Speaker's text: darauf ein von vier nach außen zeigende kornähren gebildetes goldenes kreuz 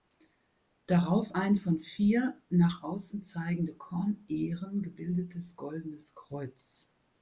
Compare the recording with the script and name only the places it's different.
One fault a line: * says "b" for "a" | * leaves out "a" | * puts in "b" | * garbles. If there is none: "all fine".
all fine